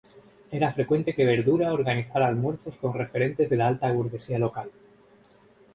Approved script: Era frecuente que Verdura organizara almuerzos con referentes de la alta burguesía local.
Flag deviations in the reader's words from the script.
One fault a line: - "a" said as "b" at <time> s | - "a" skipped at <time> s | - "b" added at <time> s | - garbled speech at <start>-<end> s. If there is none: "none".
none